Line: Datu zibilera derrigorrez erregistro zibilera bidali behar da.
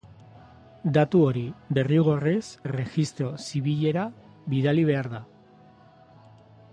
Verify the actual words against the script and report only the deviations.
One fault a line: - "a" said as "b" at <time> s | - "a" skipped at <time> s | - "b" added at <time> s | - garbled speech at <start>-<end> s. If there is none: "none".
- "zibilera" said as "hori" at 1.2 s